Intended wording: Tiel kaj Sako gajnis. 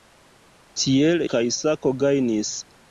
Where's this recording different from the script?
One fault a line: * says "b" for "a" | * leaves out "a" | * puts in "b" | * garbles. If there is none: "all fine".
all fine